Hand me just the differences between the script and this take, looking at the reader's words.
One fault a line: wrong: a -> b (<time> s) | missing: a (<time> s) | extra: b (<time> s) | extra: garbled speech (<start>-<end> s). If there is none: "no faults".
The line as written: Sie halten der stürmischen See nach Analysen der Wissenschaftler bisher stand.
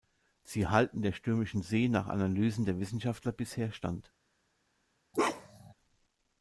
no faults